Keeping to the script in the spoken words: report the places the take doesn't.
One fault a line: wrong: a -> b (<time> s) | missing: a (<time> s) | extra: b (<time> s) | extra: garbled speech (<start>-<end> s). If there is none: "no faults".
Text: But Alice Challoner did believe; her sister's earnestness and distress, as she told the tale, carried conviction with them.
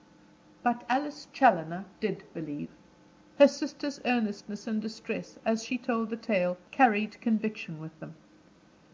no faults